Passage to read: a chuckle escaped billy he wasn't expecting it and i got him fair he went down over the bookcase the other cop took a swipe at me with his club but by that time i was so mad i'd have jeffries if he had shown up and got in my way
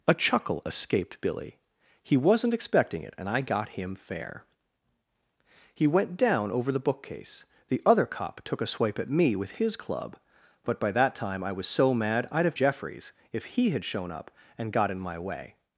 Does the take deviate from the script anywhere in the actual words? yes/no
no